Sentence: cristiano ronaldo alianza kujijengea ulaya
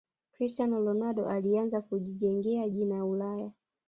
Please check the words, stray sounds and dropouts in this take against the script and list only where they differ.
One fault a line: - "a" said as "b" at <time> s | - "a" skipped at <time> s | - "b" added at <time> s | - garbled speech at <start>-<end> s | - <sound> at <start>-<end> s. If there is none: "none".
- "jina" added at 2.7 s